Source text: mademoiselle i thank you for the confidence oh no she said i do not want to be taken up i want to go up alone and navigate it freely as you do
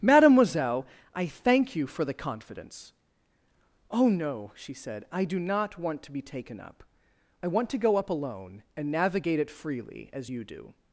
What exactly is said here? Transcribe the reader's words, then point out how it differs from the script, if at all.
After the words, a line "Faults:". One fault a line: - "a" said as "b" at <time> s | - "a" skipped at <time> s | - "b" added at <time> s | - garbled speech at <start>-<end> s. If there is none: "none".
mademoiselle i thank you for the confidence oh no she said i do not want to be taken up i want to go up alone and navigate it freely as you do
Faults:
none